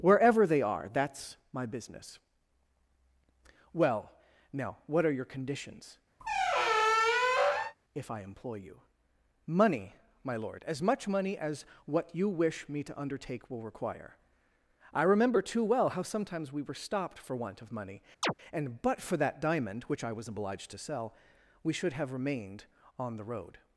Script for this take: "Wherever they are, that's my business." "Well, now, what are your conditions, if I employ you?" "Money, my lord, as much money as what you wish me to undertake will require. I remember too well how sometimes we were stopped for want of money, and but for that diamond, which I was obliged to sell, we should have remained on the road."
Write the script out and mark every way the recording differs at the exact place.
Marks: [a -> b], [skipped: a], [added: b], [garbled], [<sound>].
"Wherever they are, that's my business." "Well, now, what are your conditions, [squeak] if I employ you?" "Money, my lord, as much money as what you wish me to undertake will require. I remember too well how sometimes we were stopped for want of money, [chirp] and but for that diamond, which I was obliged to sell, we should have remained on the road."